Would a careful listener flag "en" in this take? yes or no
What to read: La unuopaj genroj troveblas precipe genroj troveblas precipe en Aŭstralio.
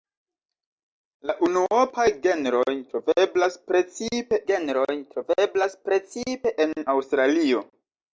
no